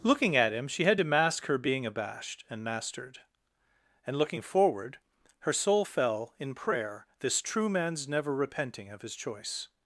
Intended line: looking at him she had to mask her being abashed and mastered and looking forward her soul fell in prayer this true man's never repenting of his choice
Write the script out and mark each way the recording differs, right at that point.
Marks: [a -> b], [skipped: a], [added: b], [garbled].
looking at him she had to mask her being abashed and mastered and looking forward her soul fell in prayer this true man's never repenting of his choice